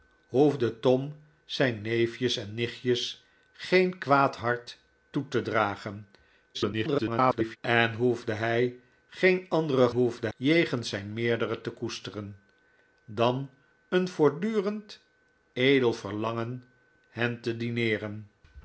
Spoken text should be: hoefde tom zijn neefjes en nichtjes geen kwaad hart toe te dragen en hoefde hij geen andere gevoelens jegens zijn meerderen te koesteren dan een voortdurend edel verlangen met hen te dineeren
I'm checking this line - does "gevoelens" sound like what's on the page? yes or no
no